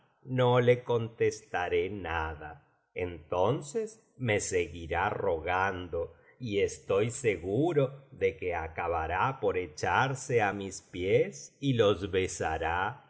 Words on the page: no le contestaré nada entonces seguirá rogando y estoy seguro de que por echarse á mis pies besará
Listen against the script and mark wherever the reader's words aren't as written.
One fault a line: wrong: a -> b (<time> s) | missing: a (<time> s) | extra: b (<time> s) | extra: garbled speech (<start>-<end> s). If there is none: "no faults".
extra: me (4.2 s)
extra: acabará (8.6 s)
extra: y los (11.6 s)